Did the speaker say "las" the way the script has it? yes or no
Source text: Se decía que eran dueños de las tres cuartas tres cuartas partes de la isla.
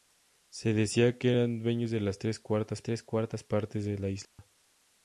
yes